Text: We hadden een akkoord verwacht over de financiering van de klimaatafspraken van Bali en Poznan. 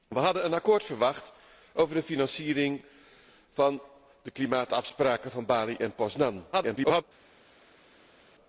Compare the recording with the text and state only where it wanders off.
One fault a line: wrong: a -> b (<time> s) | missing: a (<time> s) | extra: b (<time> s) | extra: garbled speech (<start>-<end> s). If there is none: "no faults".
extra: garbled speech (6.5-7.0 s)